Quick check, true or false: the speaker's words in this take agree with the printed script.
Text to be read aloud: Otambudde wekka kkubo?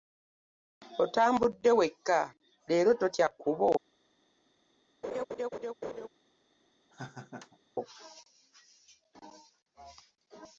false